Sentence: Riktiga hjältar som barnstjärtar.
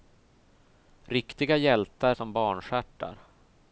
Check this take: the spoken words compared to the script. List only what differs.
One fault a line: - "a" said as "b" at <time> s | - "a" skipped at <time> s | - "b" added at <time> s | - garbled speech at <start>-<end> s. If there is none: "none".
none